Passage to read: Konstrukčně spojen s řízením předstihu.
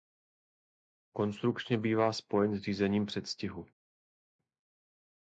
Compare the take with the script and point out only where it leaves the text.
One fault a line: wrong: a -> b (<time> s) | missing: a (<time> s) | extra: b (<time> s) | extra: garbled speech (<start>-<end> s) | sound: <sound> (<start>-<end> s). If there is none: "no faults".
extra: bývá (1.8 s)